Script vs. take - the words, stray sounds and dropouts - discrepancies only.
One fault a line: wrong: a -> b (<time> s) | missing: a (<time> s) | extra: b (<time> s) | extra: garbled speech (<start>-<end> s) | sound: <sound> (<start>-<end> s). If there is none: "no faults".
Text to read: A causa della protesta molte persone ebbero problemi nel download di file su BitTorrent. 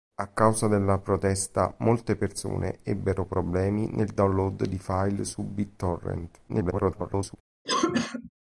extra: garbled speech (6.5-7.4 s)
sound: cough (7.6-8.3 s)